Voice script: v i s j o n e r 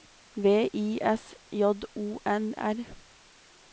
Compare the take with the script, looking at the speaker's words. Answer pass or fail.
fail